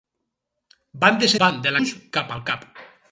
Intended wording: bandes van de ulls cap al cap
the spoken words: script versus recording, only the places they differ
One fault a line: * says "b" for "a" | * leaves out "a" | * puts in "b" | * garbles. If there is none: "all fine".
all fine